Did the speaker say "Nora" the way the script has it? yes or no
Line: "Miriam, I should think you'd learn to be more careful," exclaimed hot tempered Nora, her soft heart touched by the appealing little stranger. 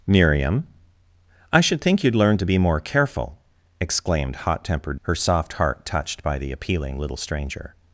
no